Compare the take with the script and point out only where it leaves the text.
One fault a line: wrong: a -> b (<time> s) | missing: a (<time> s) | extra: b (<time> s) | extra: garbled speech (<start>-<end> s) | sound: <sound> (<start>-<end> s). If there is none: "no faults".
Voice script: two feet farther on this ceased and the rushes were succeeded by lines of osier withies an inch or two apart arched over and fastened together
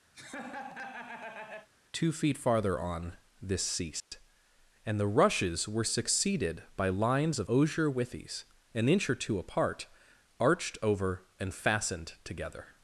sound: laugh (0.1-1.7 s)
sound: dropout (4.0-4.1 s)